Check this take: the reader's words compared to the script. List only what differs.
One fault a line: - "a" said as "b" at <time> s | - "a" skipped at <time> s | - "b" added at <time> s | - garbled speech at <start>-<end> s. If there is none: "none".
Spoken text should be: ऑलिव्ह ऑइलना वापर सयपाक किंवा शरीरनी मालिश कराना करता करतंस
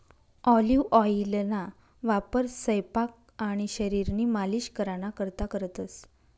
- "किंवा" said as "आणि" at 3.4 s